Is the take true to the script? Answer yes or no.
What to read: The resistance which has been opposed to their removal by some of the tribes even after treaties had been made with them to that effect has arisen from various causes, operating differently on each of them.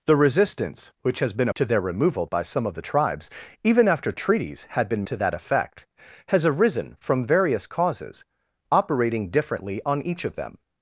no